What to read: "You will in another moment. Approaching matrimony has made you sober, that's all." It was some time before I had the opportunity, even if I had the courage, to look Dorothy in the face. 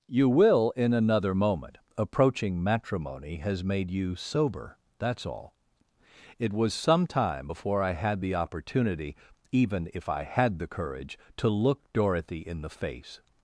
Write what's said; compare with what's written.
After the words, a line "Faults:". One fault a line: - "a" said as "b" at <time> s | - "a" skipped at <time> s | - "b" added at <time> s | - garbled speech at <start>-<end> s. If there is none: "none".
"You will in another moment. Approaching matrimony has made you sober, that's all." It was some time before I had the opportunity, even if I had the courage, to look Dorothy in the face.
Faults:
none